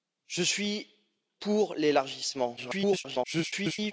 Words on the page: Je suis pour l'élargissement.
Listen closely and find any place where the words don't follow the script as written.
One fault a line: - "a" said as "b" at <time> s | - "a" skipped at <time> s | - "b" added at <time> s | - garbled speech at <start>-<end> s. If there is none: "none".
- garbled speech at 2.6-3.9 s